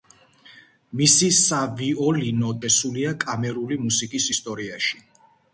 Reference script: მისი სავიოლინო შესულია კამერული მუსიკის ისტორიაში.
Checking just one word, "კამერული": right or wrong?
right